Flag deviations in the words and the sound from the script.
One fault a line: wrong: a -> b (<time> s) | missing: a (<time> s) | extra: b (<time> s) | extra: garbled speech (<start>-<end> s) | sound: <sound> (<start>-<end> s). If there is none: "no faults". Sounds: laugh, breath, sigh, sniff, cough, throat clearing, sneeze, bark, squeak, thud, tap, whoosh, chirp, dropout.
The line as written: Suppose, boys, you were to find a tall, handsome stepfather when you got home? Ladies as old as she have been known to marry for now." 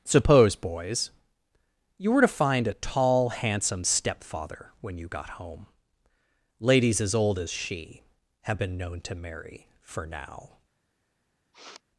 sound: sniff (11.5-11.8 s)